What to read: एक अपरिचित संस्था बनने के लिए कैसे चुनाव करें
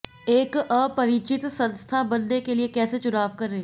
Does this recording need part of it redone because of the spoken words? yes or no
no